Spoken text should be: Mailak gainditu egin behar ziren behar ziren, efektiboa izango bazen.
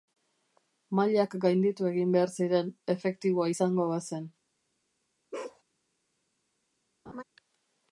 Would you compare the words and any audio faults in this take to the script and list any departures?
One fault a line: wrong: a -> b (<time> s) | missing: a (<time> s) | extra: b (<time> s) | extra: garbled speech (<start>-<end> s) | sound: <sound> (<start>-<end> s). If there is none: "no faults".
missing: behar ziren (2.7 s)
sound: bark (5.3-5.6 s)
sound: laugh (7.1-7.2 s)